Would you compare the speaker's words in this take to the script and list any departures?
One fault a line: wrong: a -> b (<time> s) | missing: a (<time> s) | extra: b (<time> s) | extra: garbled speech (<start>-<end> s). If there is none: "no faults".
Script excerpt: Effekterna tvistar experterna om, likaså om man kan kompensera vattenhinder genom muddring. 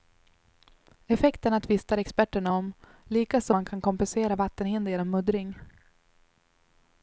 missing: om (3.5 s)